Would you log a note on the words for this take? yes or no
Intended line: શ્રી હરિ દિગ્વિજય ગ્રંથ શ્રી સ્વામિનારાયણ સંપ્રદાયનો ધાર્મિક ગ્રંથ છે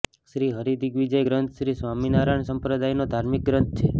no